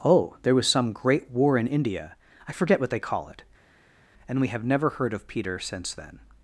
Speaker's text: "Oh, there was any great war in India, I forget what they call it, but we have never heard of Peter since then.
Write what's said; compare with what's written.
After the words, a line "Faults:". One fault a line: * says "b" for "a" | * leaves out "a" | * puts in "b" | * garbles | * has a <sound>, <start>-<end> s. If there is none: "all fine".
"Oh, there was some great war in India, I forget what they call it, and we have never heard of Peter since then.
Faults:
* says "some" for "any"
* says "and" for "but"